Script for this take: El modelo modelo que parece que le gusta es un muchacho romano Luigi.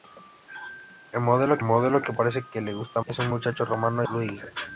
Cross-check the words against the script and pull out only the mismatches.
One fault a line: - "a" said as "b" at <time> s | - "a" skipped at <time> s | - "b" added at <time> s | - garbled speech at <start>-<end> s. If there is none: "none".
none